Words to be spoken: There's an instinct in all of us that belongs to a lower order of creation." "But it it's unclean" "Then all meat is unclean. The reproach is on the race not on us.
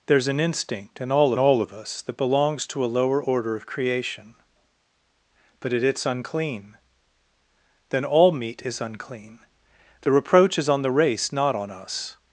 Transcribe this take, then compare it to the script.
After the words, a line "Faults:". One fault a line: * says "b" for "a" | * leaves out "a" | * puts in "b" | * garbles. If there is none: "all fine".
There's an instinct in all all of us that belongs to a lower order of creation." "But it it's unclean" "Then all meat is unclean. The reproach is on the race not on us.
Faults:
* puts in "all"